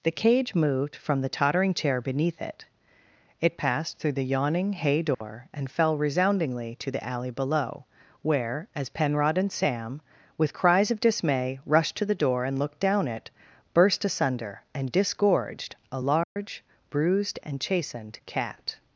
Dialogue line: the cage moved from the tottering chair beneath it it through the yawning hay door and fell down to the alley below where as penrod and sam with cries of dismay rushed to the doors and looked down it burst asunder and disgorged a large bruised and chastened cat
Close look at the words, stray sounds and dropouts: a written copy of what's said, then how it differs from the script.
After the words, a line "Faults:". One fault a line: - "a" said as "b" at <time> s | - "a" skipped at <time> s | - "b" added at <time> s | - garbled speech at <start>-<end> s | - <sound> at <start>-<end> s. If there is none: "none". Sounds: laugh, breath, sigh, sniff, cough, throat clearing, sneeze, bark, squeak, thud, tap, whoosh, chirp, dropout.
the cage moved from the tottering chair beneath it it passed through the yawning hay door and fell resoundingly to the alley below where as penrod and sam with cries of dismay rushed to the door and looked down it burst asunder and disgorged a large bruised and chastened cat
Faults:
- "passed" added at 3.6 s
- dropout at 5.1-5.2 s
- "down" said as "resoundingly" at 6.0 s
- "doors" said as "door" at 12.2 s
- dropout at 16.2-16.4 s